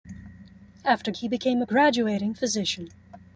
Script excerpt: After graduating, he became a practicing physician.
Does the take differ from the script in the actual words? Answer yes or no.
yes